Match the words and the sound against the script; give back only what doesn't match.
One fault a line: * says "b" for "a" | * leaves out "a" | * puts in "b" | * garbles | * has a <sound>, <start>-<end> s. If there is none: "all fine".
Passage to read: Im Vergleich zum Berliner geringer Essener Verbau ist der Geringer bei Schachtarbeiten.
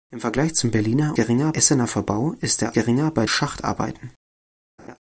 * has a laugh, 4.8-5.0 s